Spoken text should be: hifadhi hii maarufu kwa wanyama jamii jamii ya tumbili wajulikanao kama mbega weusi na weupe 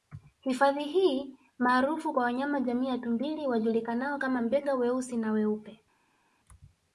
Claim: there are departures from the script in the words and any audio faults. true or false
true